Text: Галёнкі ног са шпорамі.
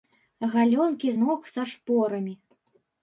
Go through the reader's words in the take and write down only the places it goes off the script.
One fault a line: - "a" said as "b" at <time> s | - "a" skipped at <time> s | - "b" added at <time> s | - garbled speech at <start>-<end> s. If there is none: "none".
none